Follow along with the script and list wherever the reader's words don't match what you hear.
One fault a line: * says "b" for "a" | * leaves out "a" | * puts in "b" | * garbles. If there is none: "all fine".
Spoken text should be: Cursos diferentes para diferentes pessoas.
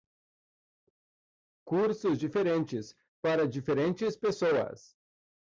all fine